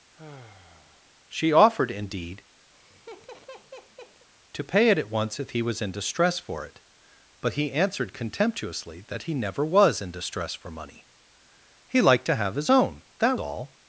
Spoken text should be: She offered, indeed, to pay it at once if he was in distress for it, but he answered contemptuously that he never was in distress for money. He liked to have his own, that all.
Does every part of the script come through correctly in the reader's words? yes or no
yes